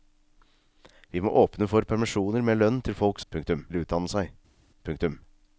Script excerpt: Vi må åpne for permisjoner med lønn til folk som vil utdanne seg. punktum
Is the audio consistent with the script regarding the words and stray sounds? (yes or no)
no